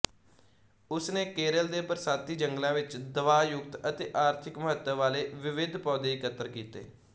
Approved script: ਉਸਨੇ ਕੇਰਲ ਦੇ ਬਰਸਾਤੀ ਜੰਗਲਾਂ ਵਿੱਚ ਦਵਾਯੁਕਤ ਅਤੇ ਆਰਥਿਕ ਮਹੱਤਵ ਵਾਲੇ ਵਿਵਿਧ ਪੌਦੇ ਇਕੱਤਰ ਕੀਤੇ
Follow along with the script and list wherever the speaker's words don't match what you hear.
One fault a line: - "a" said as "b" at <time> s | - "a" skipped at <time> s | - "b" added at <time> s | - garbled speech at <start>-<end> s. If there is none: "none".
none